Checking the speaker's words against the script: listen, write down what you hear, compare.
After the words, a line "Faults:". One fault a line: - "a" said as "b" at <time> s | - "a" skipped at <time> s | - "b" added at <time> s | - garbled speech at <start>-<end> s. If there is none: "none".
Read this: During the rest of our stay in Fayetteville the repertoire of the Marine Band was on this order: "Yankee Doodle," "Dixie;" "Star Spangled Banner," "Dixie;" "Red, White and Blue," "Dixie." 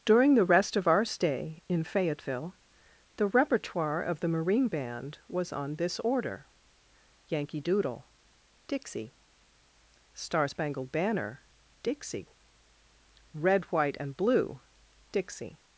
During the rest of our stay in Fayetteville the repertoire of the Marine Band was on this order: "Yankee Doodle," "Dixie;" "Star Spangled Banner," "Dixie;" "Red, White and Blue," "Dixie."
Faults:
none